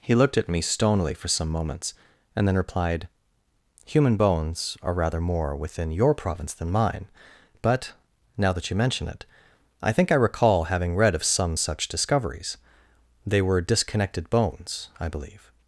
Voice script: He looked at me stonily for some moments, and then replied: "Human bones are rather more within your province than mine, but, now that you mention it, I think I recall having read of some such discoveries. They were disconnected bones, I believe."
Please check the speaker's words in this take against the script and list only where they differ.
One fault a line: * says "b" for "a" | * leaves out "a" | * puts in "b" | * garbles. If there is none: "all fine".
all fine